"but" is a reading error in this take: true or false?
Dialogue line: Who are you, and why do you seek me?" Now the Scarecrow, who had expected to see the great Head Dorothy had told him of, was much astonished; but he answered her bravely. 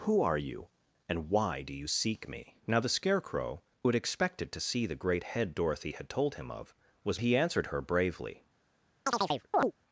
true